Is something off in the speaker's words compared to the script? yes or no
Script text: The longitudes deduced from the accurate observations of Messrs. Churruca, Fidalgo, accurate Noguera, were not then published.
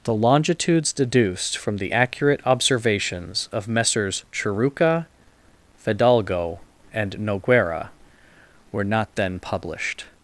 yes